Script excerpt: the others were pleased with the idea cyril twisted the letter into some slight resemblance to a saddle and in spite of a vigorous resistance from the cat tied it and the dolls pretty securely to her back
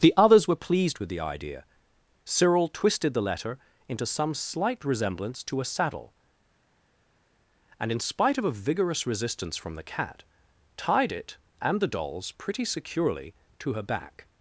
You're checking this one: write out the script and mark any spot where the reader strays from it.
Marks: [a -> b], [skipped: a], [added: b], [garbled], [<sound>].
the others were pleased with the idea cyril twisted the letter into some slight resemblance to a saddle and in spite of a vigorous resistance from the cat tied it and the dolls pretty securely to her back